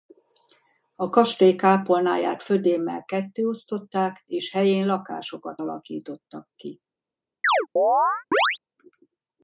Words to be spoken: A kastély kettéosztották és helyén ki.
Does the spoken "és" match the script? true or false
true